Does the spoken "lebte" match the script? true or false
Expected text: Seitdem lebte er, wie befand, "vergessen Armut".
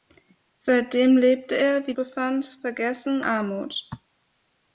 true